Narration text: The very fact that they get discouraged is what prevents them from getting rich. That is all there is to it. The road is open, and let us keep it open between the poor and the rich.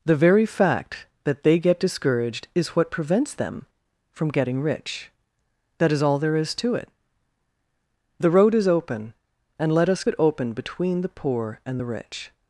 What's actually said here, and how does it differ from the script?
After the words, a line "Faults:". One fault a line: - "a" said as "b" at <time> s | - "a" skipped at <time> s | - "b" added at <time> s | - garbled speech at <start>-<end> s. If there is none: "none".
The very fact that they get discouraged is what prevents them from getting rich. That is all there is to it. The road is open, and let us it open between the poor and the rich.
Faults:
- "keep" skipped at 10.0 s